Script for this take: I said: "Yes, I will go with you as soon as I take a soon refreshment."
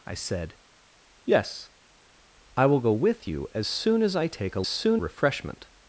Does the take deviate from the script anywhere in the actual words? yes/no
no